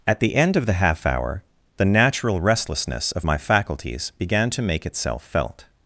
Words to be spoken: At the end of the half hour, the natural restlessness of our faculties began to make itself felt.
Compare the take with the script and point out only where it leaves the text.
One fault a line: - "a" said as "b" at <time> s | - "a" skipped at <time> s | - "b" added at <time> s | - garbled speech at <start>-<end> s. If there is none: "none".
- "our" said as "my" at 3.2 s